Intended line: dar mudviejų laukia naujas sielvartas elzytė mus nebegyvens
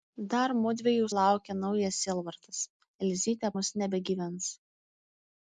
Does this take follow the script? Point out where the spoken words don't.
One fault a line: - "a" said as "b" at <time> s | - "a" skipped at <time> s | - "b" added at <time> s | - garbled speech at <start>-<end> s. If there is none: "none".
none